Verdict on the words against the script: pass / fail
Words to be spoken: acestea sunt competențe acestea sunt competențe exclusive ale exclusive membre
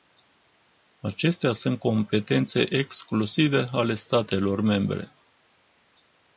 fail